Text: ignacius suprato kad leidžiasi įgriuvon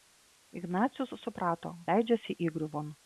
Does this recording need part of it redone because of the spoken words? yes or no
yes